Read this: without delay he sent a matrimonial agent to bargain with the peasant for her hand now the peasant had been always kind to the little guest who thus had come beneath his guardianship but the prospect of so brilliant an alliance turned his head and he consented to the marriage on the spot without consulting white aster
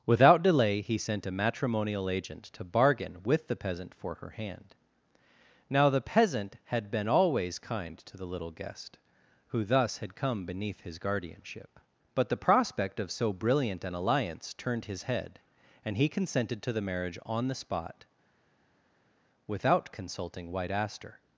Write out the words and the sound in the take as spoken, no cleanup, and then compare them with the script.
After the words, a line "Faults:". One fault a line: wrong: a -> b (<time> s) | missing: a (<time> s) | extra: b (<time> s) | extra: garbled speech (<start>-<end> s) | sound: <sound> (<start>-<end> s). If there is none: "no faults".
without delay he sent a matrimonial agent to bargain with the peasant for her hand now the peasant had been always kind to the little guest who thus had come beneath his guardianship but the prospect of so brilliant an alliance turned his head and he consented to the marriage on the spot without consulting white aster
Faults:
no faults